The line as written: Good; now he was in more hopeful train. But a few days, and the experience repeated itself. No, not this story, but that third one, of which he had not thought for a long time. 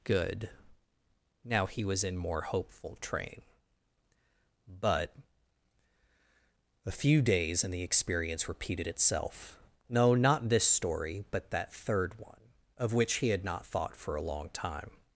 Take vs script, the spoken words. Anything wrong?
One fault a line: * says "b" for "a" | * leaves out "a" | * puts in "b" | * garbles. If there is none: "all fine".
all fine